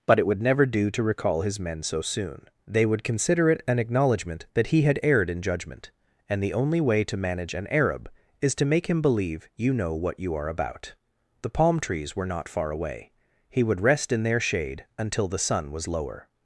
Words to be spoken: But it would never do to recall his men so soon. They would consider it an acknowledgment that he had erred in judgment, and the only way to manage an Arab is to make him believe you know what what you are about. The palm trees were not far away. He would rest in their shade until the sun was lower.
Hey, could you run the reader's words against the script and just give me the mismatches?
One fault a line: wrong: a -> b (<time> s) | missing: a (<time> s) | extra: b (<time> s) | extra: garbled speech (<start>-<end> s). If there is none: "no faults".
missing: what (10.2 s)